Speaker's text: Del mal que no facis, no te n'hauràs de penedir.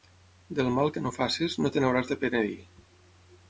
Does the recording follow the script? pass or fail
pass